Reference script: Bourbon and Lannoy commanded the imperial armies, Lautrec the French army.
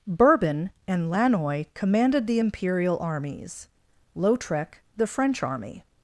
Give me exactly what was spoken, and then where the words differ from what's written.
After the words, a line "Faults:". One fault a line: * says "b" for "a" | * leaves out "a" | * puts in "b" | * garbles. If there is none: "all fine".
Bourbon and Lannoy commanded the imperial armies, Lautrec the French army.
Faults:
all fine